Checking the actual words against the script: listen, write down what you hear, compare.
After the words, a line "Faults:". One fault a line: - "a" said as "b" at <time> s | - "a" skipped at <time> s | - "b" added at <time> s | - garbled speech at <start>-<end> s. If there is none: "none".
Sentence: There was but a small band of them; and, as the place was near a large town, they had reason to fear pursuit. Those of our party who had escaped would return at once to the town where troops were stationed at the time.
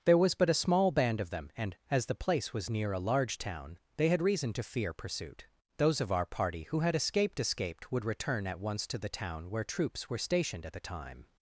There was but a small band of them; and, as the place was near a large town, they had reason to fear pursuit. Those of our party who had escaped escaped would return at once to the town where troops were stationed at the time.
Faults:
- "escaped" added at 7.4 s